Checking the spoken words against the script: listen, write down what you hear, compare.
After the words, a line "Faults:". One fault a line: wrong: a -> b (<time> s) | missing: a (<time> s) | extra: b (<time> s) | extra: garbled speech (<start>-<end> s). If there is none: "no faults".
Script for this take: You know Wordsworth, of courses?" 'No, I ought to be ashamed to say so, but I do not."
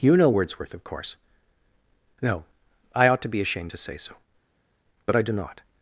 You know Wordsworth, of course?" 'No, I ought to be ashamed to say so, but I do not."
Faults:
wrong: courses -> course (0.8 s)